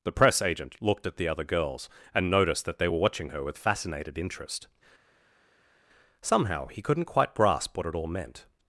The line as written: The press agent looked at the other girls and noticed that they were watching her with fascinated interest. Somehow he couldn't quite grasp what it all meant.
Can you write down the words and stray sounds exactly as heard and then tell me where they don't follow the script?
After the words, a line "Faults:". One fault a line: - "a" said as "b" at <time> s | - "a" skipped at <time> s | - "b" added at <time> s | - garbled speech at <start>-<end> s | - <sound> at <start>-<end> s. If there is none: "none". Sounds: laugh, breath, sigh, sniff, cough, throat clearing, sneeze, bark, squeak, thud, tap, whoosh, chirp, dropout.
The press agent looked at the other girls and noticed that they were watching her with fascinated interest. Somehow he couldn't quite grasp what it all meant.
Faults:
none